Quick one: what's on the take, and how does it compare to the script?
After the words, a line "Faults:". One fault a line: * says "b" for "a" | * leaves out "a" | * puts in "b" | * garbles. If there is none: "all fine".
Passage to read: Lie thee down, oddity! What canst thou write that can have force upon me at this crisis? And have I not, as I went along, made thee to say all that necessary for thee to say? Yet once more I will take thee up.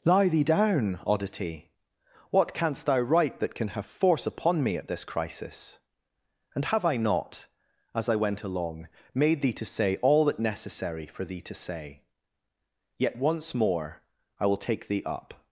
Lie thee down, oddity! What canst thou write that can have force upon me at this crisis? And have I not, as I went along, made thee to say all that necessary for thee to say? Yet once more I will take thee up.
Faults:
all fine